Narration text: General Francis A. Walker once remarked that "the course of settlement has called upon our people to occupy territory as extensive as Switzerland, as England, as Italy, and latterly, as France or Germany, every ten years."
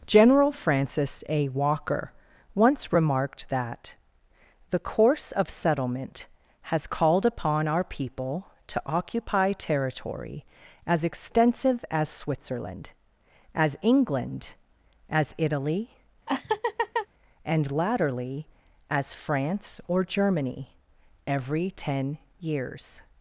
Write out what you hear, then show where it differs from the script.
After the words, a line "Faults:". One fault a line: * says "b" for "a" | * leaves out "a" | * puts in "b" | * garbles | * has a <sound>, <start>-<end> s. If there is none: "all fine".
General Francis A. Walker once remarked that "the course of settlement has called upon our people to occupy territory as extensive as Switzerland, as England, as Italy, and latterly, as France or Germany, every ten years."
Faults:
* has a laugh, 16.3-17.1 s